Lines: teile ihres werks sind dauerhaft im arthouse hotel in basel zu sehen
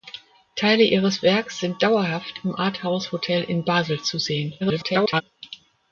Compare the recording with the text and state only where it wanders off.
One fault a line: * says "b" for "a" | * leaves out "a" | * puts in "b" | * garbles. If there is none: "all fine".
* garbles